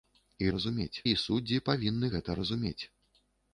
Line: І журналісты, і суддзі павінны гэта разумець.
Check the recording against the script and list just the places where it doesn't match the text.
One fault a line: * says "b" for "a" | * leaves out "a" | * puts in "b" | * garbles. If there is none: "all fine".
* says "разумець" for "журналісты"